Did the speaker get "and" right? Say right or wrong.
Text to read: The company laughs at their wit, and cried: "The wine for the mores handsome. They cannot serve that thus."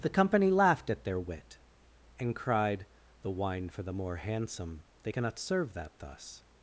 right